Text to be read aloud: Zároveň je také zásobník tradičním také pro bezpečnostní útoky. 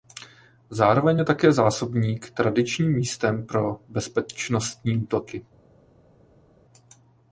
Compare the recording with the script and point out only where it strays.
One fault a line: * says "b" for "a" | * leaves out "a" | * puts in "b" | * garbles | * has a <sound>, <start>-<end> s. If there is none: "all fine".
* says "místem" for "také"